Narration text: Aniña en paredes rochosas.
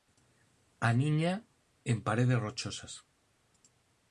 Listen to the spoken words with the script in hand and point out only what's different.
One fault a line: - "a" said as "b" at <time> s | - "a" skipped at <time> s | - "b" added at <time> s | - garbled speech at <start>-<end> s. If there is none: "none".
none